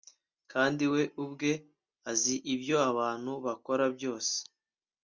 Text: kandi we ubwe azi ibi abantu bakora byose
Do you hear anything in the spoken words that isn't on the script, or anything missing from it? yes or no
yes